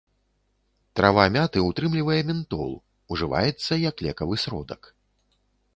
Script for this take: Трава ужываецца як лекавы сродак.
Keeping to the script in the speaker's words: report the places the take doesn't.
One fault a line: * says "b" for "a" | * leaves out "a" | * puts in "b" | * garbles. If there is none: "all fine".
* puts in "мяты ўтрымлівае ментол"